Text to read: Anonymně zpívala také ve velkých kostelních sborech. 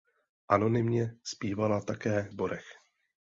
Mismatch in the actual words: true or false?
true